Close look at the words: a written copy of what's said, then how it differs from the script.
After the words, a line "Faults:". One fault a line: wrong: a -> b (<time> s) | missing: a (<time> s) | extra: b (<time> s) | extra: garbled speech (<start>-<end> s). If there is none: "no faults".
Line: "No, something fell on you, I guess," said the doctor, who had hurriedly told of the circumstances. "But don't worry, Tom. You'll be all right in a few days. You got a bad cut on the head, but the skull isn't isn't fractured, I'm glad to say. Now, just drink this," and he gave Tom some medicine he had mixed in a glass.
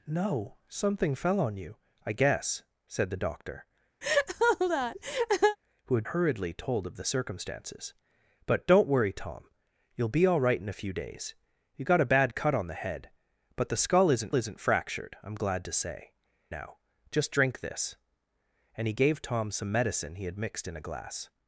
"No, something fell on you, I guess," said the doctor, who had hurriedly told of the circumstances. "But don't worry, Tom. You'll be all right in a few days. You got a bad cut on the head, but the skull isn't isn't fractured, I'm glad to say. Now, just drink this," and he gave Tom some medicine he had mixed in a glass.
Faults:
no faults